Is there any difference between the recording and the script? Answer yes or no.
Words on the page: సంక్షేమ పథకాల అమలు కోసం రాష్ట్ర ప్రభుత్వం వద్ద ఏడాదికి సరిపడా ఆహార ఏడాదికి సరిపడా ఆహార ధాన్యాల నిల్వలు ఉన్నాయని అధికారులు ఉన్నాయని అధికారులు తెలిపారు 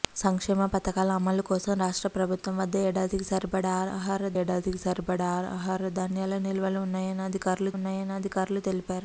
no